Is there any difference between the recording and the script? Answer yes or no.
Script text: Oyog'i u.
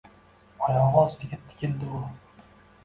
yes